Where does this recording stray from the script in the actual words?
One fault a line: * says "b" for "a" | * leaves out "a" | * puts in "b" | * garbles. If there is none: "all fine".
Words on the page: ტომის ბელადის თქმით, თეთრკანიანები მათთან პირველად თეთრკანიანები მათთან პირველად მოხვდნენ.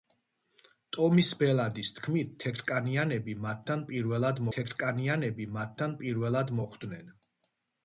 all fine